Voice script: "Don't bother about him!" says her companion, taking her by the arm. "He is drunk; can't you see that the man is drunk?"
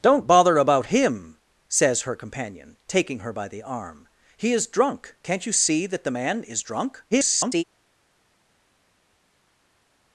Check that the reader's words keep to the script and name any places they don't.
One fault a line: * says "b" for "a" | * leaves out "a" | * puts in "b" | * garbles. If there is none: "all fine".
* garbles